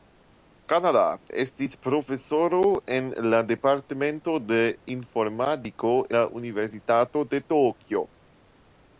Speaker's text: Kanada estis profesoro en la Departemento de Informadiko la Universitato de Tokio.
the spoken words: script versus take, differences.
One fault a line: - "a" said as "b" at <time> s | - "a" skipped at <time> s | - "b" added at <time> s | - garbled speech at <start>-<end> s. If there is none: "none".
none